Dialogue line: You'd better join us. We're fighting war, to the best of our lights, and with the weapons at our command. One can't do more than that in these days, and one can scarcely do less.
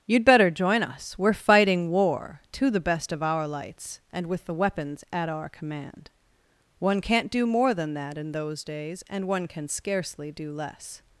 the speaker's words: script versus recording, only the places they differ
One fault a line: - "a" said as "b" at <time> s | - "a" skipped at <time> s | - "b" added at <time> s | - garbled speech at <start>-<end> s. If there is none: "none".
- "these" said as "those" at 8.3 s